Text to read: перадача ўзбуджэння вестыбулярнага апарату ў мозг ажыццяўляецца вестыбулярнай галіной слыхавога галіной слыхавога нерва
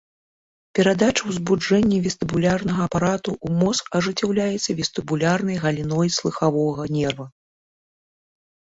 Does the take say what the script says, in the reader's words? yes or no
no